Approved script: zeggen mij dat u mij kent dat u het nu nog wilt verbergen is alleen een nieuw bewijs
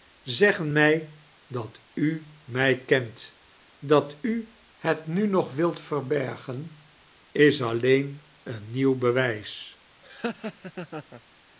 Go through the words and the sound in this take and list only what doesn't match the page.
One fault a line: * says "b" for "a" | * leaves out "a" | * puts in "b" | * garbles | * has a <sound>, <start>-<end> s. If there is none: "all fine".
* has a laugh, 10.0-11.2 s